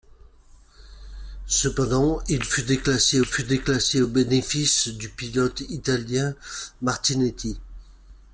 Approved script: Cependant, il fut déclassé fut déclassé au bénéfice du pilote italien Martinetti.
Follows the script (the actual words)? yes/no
yes